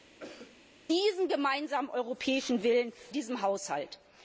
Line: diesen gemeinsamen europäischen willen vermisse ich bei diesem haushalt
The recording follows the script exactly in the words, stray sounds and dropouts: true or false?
false